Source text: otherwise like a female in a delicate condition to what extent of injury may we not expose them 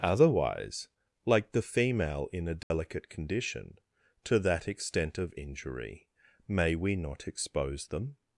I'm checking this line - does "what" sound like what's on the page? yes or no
no